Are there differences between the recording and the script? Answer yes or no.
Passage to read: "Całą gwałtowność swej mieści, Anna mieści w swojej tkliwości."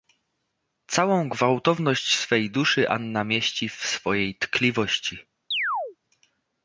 yes